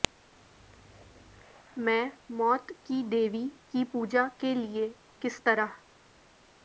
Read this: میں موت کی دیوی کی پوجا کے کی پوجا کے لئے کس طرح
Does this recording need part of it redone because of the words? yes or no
yes